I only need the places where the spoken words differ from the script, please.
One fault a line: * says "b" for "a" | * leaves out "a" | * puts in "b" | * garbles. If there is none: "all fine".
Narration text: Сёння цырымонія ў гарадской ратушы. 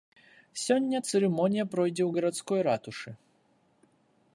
* puts in "пройдзе"